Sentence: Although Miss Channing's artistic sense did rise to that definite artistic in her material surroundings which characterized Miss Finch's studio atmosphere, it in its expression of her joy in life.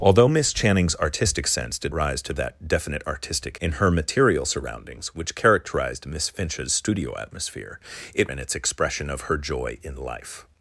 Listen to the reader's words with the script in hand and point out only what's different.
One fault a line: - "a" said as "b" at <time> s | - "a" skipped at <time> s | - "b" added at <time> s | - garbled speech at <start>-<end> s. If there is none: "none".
none